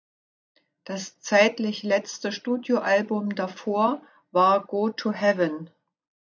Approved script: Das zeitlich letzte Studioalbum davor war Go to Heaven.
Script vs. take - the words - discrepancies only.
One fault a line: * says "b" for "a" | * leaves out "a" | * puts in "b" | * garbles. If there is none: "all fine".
all fine